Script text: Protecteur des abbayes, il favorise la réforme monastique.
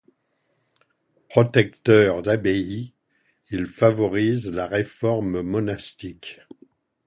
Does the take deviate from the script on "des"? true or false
true